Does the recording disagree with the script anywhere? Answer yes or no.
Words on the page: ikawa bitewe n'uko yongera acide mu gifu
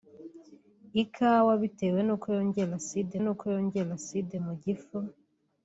yes